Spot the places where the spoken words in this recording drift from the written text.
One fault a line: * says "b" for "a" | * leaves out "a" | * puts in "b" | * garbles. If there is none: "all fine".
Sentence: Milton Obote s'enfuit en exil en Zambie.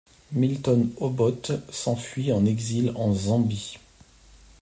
all fine